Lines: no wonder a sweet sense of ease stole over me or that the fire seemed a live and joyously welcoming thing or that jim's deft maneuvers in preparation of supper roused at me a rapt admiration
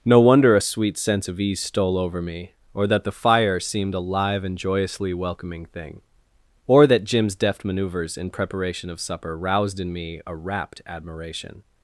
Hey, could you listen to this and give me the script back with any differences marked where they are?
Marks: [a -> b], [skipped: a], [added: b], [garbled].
no wonder a sweet sense of ease stole over me or that the fire seemed a live and joyously welcoming thing or that jim's deft maneuvers in preparation of supper roused [at -> in] me a rapt admiration